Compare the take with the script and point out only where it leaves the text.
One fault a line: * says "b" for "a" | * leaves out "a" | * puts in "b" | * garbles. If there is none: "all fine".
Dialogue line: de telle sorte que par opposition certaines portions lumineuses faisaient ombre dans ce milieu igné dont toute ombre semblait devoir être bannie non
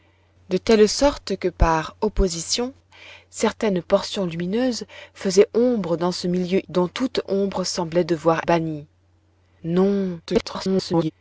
* leaves out "igné"
* leaves out "être"
* garbles